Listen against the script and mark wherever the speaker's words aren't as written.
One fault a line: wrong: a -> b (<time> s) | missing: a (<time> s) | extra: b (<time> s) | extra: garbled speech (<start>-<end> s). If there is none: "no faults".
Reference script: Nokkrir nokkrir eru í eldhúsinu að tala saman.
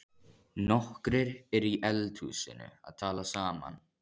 missing: nokkrir (1.3 s)